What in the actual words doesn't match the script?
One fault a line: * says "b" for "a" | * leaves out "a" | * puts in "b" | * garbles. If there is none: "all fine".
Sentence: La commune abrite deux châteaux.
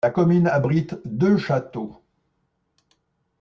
all fine